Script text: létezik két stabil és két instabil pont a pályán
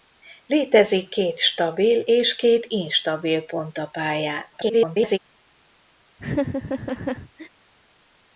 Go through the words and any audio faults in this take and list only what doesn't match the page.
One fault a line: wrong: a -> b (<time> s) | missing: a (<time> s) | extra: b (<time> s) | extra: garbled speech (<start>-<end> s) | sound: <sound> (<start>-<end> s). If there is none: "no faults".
extra: garbled speech (4.5-5.2 s)
sound: laugh (6.2-7.5 s)